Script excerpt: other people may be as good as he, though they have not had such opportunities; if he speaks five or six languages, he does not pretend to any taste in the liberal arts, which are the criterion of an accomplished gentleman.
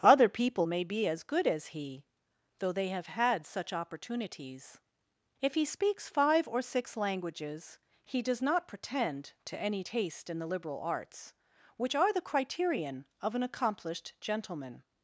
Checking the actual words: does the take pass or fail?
fail